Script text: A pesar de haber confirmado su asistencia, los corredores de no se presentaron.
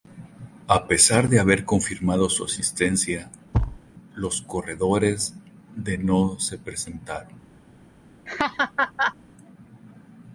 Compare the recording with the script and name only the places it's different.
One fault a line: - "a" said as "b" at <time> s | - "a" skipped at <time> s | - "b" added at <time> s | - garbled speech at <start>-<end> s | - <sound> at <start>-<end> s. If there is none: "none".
- thud at 3.5-3.8 s
- laugh at 8.3-9.2 s